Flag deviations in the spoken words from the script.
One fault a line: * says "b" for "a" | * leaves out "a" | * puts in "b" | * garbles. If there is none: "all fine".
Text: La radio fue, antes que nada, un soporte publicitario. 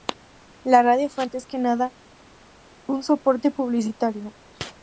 all fine